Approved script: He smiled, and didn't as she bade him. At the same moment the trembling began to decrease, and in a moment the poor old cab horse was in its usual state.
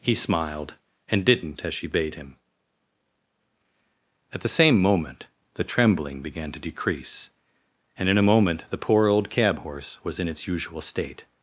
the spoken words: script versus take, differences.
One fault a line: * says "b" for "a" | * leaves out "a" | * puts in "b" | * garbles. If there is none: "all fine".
all fine